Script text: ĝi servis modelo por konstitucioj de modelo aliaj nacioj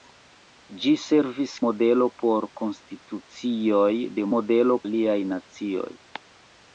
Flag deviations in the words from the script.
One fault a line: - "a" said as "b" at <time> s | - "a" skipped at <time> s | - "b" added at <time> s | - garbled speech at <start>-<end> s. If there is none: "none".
none